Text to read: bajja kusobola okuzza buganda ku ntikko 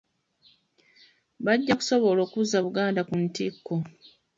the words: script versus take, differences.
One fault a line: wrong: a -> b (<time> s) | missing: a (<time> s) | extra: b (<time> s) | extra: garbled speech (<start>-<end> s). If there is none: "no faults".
no faults